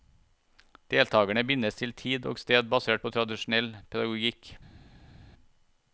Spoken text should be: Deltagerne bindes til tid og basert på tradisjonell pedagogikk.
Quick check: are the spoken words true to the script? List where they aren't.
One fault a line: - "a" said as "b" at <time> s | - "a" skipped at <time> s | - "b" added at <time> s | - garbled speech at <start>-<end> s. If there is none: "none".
- "sted" added at 2.4 s